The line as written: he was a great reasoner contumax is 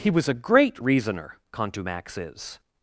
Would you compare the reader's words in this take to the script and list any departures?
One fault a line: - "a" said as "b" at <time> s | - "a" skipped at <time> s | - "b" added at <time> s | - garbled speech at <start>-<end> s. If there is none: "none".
none